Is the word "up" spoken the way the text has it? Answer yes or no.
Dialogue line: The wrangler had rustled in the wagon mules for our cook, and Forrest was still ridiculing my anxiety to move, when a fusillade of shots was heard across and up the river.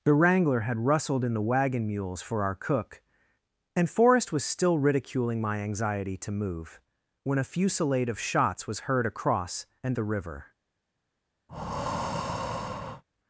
no